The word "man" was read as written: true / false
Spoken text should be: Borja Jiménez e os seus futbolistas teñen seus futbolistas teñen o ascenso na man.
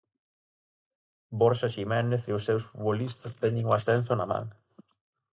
true